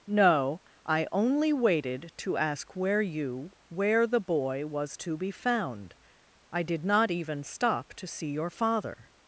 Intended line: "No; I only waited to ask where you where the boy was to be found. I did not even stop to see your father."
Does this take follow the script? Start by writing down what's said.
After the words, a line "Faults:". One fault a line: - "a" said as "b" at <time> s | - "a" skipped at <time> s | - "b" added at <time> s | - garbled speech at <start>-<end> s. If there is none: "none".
"No; I only waited to ask where you where the boy was to be found. I did not even stop to see your father."
Faults:
none